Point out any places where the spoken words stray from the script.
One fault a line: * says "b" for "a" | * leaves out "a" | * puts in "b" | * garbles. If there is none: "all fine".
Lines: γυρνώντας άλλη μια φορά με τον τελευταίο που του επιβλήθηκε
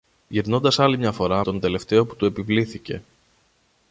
* leaves out "με"